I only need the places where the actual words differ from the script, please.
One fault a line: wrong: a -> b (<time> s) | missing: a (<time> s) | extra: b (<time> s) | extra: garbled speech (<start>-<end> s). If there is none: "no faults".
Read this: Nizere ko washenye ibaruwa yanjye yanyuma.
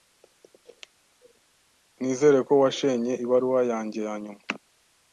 no faults